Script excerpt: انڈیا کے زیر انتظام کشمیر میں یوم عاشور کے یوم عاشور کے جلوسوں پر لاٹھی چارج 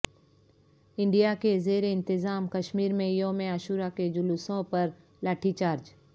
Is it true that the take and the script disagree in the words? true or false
true